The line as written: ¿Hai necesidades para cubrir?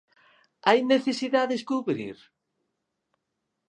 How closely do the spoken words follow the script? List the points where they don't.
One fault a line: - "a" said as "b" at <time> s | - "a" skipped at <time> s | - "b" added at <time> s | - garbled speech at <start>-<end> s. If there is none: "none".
- "para" skipped at 1.6 s